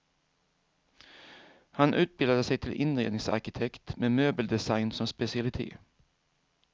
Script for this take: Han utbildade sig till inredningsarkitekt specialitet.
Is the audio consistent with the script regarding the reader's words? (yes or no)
no